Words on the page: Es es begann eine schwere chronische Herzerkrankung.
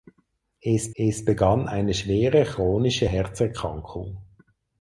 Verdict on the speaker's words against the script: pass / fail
pass